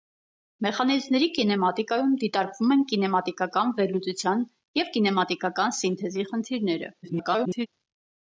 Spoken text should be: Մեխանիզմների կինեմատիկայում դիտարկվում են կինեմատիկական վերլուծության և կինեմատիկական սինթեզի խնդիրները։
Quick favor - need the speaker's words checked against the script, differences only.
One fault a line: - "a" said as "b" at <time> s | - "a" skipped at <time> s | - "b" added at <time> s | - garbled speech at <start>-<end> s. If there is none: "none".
- garbled speech at 7.0-7.7 s